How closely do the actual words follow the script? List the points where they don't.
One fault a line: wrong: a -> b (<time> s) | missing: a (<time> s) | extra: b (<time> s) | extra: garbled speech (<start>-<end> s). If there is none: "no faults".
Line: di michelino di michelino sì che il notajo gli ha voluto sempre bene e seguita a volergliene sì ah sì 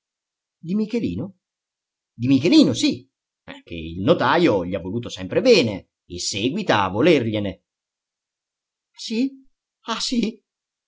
no faults